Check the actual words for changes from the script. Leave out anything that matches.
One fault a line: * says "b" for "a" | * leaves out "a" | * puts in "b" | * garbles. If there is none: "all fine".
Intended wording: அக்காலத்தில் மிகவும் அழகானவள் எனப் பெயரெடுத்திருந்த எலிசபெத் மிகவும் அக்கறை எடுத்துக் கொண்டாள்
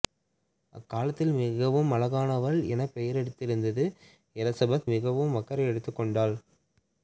all fine